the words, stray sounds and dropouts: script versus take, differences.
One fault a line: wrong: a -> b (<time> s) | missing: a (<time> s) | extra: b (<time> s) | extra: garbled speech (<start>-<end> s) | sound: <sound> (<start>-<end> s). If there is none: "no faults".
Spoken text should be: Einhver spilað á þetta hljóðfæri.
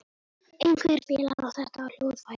sound: dropout (1.3-1.4 s)